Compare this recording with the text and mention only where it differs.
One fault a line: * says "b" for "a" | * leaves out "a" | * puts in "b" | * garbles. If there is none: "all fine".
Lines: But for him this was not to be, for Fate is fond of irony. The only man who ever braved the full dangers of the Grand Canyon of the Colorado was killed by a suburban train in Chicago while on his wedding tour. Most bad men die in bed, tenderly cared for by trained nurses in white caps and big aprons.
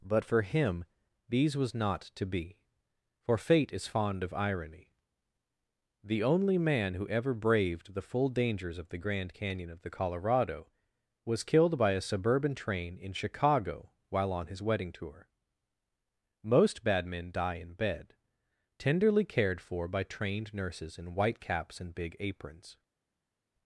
* says "these" for "this"